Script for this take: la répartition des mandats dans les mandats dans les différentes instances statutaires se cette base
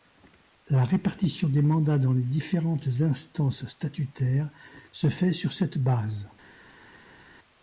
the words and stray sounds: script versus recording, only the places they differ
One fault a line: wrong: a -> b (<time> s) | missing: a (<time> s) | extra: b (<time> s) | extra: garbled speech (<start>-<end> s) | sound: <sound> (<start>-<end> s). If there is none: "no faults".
missing: mandats dans les (2.2 s)
extra: fait sur (5.1 s)